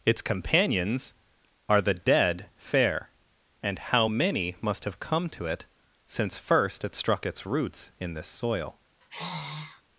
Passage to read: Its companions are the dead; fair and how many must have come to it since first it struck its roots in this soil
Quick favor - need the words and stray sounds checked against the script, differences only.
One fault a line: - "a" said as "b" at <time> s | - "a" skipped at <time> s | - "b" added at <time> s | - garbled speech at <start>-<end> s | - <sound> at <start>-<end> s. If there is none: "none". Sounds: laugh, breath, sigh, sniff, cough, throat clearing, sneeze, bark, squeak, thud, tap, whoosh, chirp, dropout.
- sigh at 9.0-9.8 s